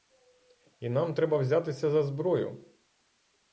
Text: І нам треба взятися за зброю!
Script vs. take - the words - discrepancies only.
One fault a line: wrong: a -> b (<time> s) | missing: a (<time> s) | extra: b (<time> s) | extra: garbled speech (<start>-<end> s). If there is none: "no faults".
no faults